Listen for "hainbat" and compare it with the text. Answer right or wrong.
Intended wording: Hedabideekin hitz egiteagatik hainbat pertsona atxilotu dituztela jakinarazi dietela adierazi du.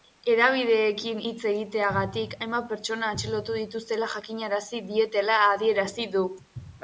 right